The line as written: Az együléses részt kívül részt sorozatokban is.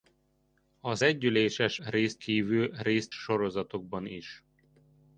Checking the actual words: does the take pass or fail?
pass